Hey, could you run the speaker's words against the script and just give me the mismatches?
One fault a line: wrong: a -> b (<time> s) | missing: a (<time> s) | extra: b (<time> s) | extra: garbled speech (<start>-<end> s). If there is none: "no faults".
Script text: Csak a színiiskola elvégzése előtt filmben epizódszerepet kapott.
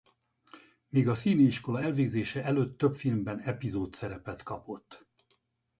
wrong: Csak -> Még (0.9 s)
extra: több (2.8 s)